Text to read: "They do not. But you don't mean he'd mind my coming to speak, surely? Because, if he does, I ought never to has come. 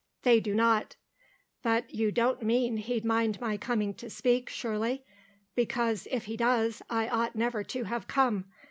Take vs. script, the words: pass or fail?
fail